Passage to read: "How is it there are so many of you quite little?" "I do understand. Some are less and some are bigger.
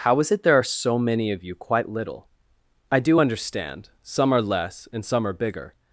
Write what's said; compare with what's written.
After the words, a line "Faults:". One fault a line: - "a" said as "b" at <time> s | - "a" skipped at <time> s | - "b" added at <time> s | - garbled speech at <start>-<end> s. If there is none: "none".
"How is it there are so many of you quite little?" "I do understand. Some are less and some are bigger.
Faults:
none